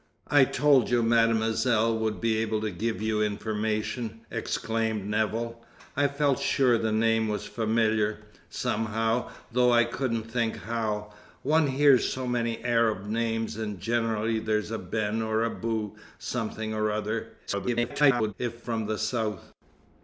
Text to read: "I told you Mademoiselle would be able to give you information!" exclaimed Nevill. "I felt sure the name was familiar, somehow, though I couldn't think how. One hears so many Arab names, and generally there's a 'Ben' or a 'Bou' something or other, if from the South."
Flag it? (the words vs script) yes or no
yes